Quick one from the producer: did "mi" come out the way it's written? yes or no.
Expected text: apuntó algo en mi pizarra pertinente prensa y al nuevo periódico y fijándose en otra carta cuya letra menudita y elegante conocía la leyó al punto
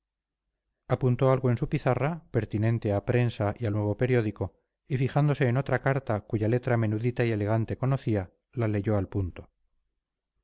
no